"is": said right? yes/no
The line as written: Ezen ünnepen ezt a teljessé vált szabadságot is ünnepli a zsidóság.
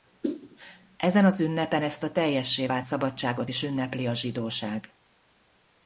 yes